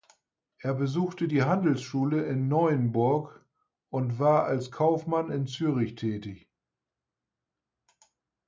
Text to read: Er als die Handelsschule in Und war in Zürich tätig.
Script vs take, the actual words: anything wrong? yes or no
yes